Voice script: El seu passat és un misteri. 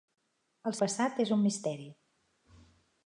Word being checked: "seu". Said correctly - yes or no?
no